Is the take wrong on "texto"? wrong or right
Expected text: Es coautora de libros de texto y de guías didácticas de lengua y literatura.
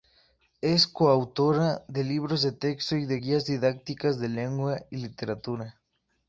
right